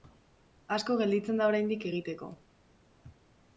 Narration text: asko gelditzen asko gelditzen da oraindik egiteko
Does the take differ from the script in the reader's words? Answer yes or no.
yes